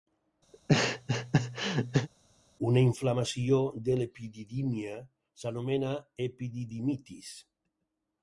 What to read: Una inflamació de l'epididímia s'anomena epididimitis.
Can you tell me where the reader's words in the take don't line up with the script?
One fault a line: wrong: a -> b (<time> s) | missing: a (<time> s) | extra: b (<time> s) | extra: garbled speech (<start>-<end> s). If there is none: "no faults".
no faults